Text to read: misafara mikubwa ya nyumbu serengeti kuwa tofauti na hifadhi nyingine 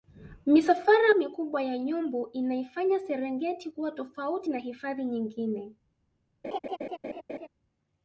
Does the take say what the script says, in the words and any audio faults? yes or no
no